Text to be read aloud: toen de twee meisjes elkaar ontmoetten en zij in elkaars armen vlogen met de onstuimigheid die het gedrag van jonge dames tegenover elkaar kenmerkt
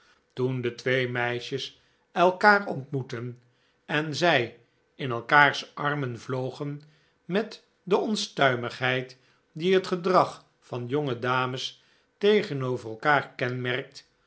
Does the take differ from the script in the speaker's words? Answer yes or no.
no